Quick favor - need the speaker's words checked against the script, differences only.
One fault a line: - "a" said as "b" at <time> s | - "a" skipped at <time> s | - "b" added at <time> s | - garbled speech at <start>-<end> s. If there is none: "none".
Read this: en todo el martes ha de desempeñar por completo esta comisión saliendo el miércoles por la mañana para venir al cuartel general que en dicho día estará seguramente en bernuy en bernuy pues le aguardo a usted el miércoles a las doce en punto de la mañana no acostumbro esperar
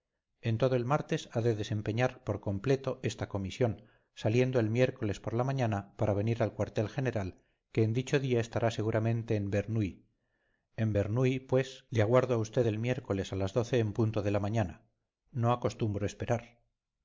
none